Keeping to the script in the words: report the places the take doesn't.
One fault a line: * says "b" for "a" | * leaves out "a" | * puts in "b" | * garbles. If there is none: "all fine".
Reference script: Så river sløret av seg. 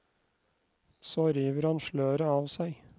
* puts in "han"